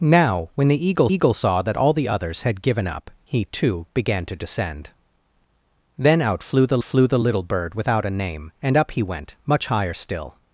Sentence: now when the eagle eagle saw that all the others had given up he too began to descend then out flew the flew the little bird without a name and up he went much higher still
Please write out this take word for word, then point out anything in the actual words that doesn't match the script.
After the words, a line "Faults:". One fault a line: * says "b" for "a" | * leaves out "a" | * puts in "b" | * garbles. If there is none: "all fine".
now when the eagle eagle saw that all the others had given up he too began to descend then out flew the flew the little bird without a name and up he went much higher still
Faults:
all fine